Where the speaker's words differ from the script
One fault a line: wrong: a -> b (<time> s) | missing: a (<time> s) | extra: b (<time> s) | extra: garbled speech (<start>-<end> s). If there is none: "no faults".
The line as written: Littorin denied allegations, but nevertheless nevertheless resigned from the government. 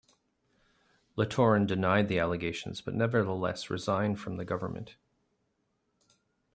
extra: the (2.1 s)
missing: nevertheless (3.7 s)